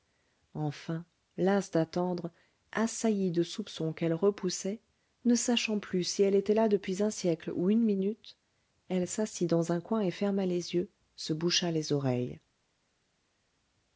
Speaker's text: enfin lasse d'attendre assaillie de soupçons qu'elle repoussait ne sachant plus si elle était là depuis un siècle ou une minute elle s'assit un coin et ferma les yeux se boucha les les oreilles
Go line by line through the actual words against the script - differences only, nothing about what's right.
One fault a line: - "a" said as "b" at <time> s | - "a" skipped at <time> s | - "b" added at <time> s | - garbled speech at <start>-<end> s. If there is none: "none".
- "dans" added at 9.5 s
- "les" skipped at 11.9 s